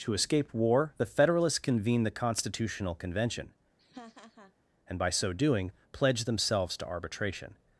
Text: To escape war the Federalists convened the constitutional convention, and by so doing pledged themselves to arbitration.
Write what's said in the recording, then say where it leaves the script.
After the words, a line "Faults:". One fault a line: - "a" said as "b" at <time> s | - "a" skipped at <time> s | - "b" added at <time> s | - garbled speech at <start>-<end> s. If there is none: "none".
To escape war the Federalists convened the constitutional convention, and by so doing pledged themselves to arbitration.
Faults:
none